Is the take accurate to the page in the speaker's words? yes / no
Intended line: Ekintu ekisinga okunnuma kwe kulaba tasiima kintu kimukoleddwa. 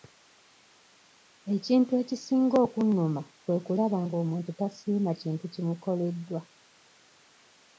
no